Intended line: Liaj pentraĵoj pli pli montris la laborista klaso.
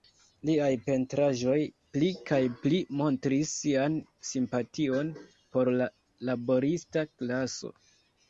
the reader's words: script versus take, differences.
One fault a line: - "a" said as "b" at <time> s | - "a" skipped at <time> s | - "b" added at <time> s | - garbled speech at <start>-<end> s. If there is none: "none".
- "kaj" added at 2.3 s
- "sian simpation por" added at 3.6 s